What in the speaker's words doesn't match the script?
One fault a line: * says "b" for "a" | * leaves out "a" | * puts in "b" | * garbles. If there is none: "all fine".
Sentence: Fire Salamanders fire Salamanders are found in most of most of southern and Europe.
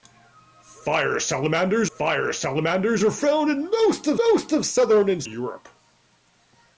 all fine